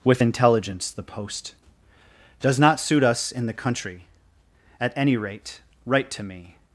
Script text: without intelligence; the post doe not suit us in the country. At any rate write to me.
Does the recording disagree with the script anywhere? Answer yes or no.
yes